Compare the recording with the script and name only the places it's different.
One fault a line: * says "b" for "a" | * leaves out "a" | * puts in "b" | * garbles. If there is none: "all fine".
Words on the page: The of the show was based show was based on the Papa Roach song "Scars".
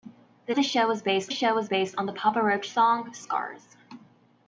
all fine